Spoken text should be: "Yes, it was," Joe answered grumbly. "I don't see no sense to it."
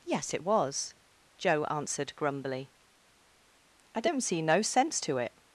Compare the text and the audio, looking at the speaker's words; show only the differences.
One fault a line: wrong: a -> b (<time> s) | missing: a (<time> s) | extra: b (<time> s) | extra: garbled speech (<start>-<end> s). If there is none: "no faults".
no faults